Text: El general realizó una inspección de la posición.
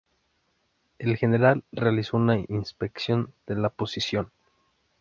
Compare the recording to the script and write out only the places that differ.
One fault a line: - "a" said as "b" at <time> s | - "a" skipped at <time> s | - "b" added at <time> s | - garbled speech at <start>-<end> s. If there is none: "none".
none